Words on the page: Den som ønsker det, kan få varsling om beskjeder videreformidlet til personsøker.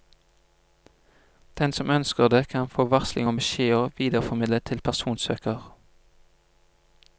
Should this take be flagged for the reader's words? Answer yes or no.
no